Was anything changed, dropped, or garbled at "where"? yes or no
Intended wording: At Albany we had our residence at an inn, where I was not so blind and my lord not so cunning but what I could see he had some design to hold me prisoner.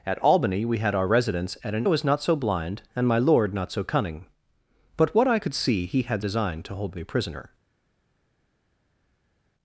yes